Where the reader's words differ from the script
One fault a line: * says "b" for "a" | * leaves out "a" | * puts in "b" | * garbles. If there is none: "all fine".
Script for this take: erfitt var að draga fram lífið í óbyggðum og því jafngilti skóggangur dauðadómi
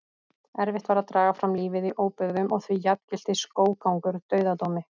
all fine